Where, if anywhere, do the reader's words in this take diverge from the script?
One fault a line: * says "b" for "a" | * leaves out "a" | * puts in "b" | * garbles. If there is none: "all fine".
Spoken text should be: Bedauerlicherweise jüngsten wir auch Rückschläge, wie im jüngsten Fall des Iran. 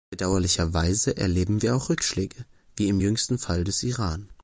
* says "erleben" for "jüngsten"